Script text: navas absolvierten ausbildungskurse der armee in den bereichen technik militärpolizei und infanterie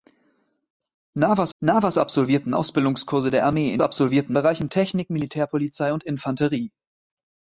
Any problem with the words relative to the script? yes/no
yes